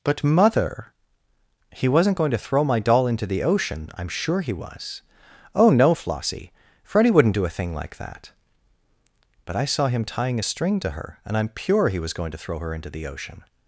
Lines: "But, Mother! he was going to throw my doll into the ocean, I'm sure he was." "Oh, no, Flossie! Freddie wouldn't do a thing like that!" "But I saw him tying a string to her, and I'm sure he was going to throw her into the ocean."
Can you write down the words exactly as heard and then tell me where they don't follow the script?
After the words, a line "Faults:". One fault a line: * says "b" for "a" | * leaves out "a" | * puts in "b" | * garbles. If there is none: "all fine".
"But, Mother! he wasn't going to throw my doll into the ocean, I'm sure he was." "Oh, no, Flossie! Freddie wouldn't do a thing like that!" "But I saw him tying a string to her, and I'm pure he was going to throw her into the ocean."
Faults:
* says "wasn't" for "was"
* says "pure" for "sure"